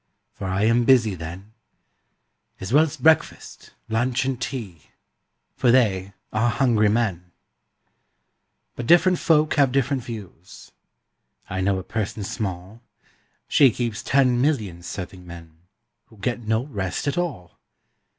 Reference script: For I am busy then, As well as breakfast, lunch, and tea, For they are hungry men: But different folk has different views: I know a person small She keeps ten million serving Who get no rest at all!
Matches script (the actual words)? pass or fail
fail